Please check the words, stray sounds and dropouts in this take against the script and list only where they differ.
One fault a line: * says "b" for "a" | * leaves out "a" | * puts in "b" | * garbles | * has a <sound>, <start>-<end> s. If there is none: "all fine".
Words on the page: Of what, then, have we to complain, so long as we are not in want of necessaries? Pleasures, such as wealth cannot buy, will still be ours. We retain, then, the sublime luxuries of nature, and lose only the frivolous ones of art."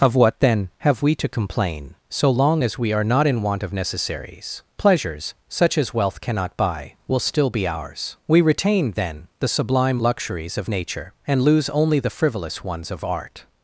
all fine